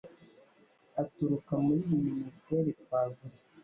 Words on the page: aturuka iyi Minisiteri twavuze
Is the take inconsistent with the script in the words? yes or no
yes